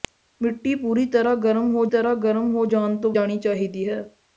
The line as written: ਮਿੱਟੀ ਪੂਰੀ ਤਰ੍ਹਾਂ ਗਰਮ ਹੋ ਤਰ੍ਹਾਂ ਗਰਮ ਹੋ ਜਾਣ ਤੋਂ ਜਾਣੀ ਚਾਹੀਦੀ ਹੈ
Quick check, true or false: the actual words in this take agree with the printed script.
true